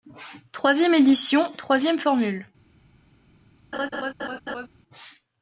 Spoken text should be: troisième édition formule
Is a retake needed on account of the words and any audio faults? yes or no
yes